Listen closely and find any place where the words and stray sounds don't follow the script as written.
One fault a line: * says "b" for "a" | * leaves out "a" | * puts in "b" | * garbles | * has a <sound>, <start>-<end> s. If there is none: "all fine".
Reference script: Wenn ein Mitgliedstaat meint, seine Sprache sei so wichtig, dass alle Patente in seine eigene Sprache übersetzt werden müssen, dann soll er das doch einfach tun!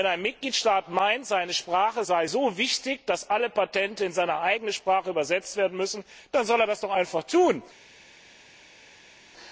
all fine